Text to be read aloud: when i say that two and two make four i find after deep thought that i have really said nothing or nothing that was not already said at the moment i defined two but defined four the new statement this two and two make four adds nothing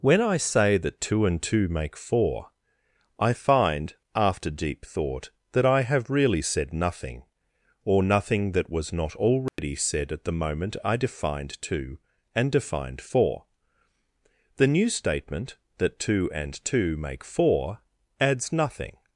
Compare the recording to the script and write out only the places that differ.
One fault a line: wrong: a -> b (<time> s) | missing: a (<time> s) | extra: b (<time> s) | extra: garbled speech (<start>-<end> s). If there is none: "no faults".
wrong: but -> and (12.3 s)
wrong: this -> that (15.8 s)